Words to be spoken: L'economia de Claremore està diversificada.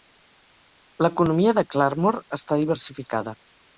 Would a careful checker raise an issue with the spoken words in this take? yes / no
no